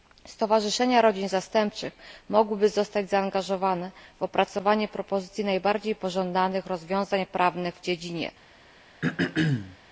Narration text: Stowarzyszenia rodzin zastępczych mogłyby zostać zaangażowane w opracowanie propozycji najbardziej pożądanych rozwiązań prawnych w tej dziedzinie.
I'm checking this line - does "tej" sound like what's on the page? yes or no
no